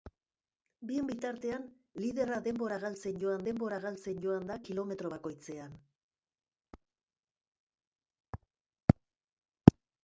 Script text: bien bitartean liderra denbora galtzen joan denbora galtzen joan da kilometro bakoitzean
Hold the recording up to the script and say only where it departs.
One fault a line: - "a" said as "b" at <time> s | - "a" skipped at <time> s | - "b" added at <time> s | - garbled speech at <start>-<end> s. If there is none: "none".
none